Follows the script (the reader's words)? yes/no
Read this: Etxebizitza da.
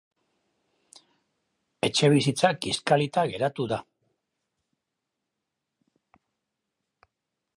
no